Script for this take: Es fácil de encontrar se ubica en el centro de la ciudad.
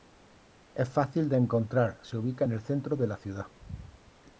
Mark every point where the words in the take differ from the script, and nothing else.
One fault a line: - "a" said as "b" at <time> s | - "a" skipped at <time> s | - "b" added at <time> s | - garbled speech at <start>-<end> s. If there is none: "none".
none